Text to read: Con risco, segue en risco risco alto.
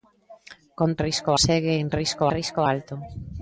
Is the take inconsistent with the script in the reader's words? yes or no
no